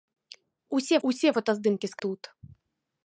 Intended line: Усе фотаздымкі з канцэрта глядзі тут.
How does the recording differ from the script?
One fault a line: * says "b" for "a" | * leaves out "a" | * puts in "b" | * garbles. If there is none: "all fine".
* puts in "усе"
* leaves out "канцэрта глядзі"